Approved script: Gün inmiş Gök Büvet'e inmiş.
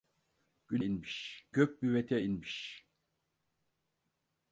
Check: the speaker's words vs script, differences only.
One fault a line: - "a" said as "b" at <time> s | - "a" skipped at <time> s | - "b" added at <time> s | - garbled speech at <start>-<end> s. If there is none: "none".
none